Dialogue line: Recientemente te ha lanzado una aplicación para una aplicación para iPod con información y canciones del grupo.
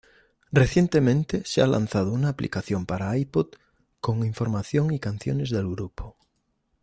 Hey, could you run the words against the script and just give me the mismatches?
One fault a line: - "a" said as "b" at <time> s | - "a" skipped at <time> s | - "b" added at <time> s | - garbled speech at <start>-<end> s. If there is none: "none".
- "te" said as "se" at 1.4 s
- "una aplicación para" skipped at 3.1 s